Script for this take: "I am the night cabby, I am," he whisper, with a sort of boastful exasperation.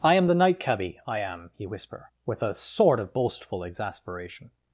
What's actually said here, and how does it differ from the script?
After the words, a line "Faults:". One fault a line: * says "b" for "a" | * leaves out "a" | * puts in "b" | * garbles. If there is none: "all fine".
"I am the night cabby, I am," he whisper, with a sort of boastful exasperation.
Faults:
all fine